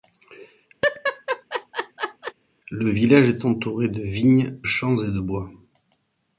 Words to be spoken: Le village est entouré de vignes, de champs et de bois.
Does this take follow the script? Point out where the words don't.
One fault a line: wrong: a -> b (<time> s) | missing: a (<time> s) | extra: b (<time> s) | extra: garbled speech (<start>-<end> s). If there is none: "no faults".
missing: de (4.6 s)